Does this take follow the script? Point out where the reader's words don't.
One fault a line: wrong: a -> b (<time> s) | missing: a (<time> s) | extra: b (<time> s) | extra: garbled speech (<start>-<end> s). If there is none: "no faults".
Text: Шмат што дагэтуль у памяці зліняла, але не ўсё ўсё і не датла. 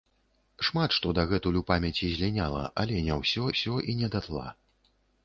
no faults